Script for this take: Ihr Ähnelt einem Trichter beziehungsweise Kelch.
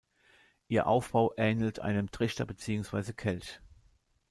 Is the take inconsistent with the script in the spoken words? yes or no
yes